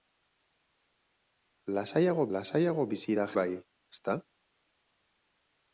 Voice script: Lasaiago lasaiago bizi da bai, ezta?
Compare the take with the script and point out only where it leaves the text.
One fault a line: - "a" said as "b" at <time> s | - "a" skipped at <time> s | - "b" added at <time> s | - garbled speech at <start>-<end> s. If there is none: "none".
none